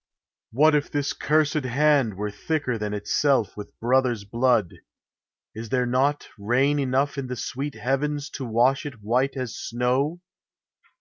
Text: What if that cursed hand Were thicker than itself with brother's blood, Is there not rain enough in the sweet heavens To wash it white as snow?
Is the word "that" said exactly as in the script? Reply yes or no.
no